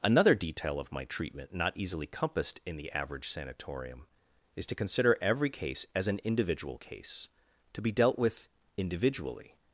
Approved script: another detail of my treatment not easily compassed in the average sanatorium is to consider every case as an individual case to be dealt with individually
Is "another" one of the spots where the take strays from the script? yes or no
no